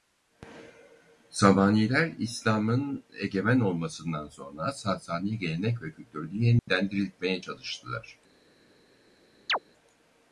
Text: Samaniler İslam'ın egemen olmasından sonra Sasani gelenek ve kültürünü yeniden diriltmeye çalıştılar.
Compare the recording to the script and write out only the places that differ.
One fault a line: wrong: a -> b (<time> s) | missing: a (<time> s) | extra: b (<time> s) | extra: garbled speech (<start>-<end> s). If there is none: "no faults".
no faults